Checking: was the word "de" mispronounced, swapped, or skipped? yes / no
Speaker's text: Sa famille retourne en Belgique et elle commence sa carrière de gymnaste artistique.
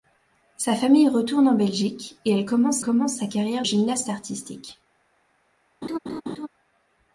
yes